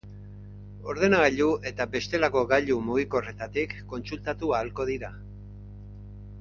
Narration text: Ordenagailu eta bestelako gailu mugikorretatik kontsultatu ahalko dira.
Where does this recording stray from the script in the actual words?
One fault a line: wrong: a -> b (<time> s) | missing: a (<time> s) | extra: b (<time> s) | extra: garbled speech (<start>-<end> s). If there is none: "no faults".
no faults